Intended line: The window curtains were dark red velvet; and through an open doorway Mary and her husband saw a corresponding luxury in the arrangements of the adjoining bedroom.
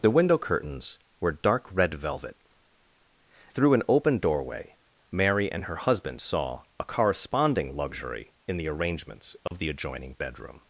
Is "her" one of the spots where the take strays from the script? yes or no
no